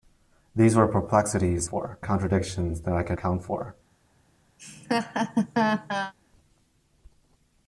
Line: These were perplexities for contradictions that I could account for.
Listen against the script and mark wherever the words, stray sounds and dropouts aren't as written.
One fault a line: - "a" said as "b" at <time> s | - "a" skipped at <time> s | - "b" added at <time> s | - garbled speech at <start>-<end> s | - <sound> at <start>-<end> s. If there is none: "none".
- laugh at 4.6-6.1 s